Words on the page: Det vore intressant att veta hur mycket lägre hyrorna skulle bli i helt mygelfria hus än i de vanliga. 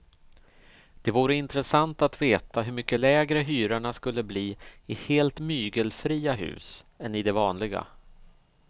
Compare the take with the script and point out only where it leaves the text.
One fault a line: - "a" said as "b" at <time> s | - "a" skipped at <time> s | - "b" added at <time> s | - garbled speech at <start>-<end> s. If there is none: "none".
none